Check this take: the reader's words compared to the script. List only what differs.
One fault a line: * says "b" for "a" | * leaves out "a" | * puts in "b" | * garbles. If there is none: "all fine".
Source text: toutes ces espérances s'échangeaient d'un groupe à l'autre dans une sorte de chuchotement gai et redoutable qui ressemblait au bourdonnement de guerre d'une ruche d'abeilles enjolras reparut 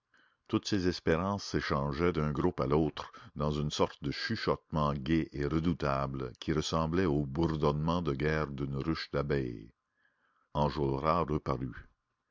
all fine